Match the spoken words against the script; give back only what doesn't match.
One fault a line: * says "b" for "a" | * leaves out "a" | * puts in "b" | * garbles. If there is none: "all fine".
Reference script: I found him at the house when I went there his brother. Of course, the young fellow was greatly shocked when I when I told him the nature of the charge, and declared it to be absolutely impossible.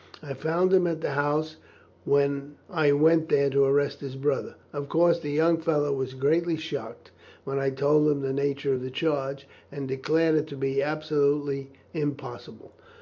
* puts in "to arrest"
* leaves out "when I"